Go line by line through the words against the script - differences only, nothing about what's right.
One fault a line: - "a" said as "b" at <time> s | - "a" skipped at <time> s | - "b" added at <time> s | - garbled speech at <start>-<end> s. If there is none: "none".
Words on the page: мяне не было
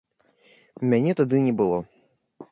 - "тады" added at 1.2 s